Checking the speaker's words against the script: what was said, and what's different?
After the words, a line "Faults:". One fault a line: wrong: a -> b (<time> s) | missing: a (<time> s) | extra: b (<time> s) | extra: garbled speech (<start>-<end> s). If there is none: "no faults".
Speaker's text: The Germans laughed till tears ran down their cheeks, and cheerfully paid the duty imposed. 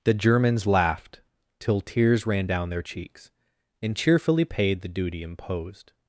The Germans laughed till tears ran down their cheeks, and cheerfully paid the duty imposed.
Faults:
no faults